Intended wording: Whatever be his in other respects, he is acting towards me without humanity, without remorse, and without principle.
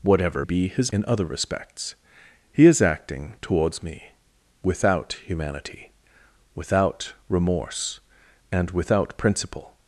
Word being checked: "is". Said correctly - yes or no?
yes